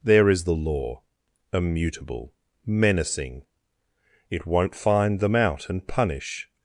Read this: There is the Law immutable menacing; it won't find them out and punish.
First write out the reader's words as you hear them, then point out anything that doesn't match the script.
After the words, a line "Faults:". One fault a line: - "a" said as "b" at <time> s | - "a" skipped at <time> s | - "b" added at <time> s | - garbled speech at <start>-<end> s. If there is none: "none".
There is the Law immutable menacing; it won't find them out and punish.
Faults:
none